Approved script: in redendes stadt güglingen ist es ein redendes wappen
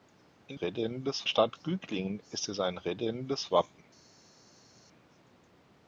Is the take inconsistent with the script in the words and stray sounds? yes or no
no